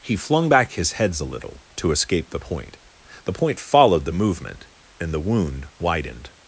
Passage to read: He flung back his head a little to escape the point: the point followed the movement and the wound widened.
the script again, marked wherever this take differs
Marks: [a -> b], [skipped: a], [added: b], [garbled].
He flung back his [head -> heads] a little to escape the point: the point followed the movement and the wound widened.